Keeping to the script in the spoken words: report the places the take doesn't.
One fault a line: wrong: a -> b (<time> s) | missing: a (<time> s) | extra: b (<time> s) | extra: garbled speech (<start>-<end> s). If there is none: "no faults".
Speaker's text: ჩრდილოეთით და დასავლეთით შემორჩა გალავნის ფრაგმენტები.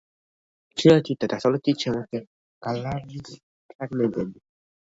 no faults